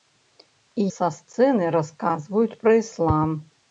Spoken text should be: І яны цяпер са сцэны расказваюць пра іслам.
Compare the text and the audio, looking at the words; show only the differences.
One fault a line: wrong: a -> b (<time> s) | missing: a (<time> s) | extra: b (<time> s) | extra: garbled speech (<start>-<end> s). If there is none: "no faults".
missing: яны цяпер (0.8 s)